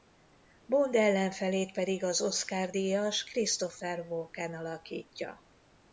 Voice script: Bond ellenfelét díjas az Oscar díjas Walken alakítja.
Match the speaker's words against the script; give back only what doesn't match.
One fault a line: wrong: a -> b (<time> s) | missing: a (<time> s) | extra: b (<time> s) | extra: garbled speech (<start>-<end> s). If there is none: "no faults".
wrong: díjas -> pedig (1.7 s)
extra: Christopher (3.2 s)